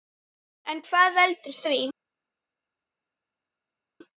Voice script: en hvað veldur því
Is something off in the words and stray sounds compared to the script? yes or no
no